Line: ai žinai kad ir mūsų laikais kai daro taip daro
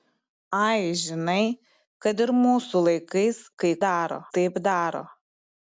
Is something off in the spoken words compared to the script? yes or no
no